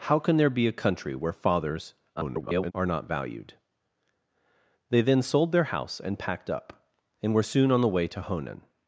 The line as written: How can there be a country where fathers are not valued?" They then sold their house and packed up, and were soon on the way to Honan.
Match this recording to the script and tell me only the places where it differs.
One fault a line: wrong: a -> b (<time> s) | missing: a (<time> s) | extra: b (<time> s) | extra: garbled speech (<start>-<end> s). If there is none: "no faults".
extra: garbled speech (2.2-2.7 s)